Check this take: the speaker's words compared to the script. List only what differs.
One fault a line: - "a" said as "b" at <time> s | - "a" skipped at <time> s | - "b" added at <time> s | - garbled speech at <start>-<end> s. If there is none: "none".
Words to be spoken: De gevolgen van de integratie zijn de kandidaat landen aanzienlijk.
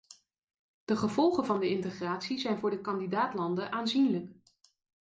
- "voor" added at 2.6 s